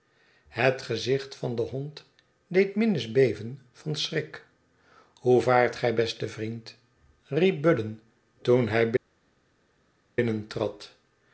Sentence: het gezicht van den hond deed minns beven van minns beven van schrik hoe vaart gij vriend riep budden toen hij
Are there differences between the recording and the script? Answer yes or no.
yes